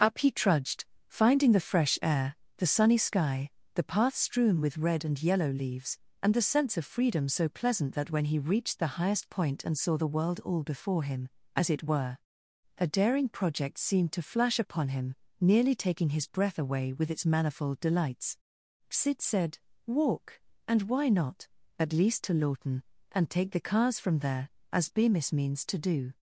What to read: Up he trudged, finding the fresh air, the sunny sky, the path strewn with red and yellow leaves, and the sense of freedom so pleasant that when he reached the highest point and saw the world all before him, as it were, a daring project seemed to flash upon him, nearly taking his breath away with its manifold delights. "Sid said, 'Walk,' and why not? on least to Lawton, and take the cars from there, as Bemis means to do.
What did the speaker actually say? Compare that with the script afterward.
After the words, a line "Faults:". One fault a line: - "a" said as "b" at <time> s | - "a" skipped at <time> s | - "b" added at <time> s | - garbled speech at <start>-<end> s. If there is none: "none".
Up he trudged, finding the fresh air, the sunny sky, the path strewn with red and yellow leaves, and the sense of freedom so pleasant that when he reached the highest point and saw the world all before him, as it were, a daring project seemed to flash upon him, nearly taking his breath away with its manifold delights. "Sid said, 'Walk,' and why not? at least to Lawton, and take the cars from there, as Bemis means to do.
Faults:
- "on" said as "at" at 21.8 s